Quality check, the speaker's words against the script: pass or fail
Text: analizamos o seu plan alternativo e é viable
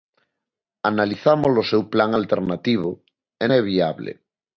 pass